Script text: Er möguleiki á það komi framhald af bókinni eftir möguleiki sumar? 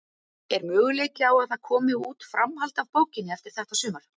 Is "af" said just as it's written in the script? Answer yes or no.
yes